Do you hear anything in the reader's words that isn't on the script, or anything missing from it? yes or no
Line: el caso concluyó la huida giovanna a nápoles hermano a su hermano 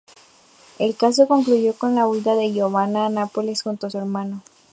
yes